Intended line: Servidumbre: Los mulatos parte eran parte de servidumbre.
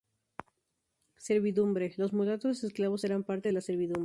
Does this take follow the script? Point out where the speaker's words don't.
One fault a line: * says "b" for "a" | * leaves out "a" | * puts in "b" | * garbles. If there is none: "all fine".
* says "esclavos" for "parte"
* puts in "la"